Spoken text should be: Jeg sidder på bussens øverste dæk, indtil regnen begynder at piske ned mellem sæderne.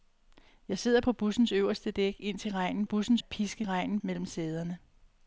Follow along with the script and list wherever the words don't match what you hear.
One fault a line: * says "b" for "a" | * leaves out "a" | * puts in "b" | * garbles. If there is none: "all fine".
* says "bussens" for "begynder"
* says "regnen" for "ned"